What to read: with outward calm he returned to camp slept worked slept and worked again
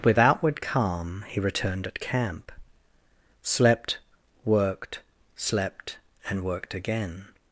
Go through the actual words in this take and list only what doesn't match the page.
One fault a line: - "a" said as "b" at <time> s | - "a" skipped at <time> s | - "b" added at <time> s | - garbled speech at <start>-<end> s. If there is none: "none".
- "to" said as "at" at 1.8 s